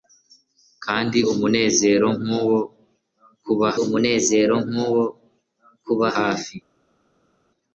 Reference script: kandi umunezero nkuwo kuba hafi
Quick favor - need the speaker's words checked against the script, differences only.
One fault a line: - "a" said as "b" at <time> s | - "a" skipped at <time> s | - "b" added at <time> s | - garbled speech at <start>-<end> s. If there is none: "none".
- "umunezero nkuwo kuba" added at 3.8 s